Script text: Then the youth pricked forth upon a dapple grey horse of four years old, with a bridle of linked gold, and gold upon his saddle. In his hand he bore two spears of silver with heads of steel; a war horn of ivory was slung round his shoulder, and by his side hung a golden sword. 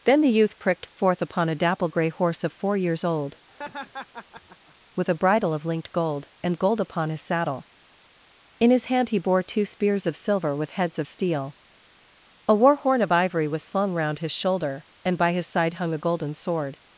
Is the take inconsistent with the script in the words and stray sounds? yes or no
yes